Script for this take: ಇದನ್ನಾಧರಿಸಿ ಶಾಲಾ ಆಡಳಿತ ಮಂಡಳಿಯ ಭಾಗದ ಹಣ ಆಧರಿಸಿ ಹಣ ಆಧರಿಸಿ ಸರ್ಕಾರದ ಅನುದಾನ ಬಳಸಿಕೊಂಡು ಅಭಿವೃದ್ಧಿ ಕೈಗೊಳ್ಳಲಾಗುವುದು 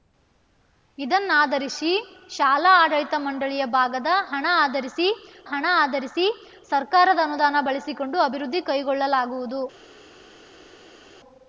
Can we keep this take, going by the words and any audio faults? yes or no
yes